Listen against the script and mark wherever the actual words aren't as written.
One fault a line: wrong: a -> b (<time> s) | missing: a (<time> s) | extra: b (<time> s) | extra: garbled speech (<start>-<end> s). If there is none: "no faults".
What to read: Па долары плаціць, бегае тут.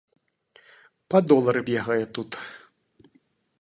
missing: плаціць (1.6 s)